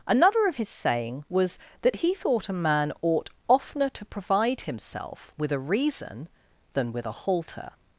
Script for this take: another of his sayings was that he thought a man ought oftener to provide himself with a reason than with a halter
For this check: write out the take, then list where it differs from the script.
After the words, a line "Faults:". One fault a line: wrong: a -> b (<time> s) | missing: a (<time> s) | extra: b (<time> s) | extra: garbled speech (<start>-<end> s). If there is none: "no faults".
another of his saying was that he thought a man ought oftener to provide himself with a reason than with a halter
Faults:
wrong: sayings -> saying (0.7 s)